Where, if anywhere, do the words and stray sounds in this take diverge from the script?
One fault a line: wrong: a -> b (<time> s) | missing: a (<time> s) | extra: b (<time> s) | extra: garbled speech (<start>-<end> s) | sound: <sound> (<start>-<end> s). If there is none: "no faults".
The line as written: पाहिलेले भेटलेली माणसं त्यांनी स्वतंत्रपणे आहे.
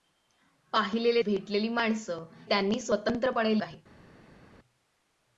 no faults